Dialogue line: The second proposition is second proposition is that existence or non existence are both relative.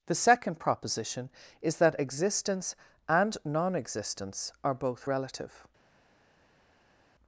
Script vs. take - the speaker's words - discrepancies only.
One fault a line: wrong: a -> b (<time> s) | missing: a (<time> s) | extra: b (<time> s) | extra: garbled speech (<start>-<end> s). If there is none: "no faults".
missing: second proposition is (1.8 s)
wrong: or -> and (3.1 s)